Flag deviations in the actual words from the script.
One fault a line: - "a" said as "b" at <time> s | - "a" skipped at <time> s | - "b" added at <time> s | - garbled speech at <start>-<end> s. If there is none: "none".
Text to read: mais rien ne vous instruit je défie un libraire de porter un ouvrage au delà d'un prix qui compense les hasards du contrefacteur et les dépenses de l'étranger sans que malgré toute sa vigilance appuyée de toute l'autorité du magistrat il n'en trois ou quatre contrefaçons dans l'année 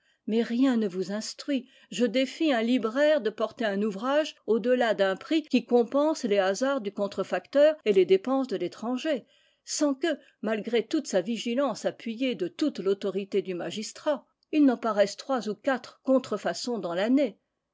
- "paraisse" added at 14.8 s